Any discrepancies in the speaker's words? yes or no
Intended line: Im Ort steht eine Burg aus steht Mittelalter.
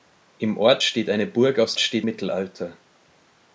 no